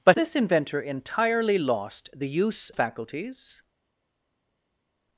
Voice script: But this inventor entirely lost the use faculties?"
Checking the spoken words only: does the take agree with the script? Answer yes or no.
yes